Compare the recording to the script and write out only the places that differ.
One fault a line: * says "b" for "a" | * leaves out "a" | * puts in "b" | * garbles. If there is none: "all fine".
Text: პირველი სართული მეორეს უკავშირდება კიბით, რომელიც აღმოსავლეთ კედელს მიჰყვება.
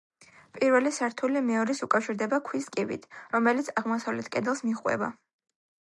* puts in "ქვის"